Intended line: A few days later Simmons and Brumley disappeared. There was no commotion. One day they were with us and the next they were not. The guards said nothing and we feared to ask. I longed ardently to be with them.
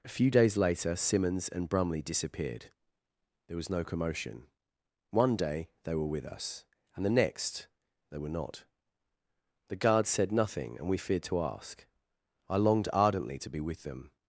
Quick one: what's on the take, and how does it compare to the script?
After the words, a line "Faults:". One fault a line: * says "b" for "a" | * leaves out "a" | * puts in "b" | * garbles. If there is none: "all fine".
A few days later Simmons and Brumley disappeared. There was no commotion. One day they were with us and the next they were not. The guards said nothing and we feared to ask. I longed ardently to be with them.
Faults:
all fine